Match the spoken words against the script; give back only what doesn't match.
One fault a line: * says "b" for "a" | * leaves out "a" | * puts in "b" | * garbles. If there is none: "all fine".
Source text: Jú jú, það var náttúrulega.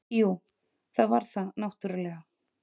* leaves out "jú"
* puts in "það"